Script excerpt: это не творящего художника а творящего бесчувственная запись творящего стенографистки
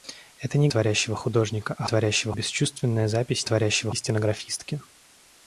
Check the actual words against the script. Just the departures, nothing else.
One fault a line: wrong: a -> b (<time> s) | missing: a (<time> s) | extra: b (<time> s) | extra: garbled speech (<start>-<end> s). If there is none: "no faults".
no faults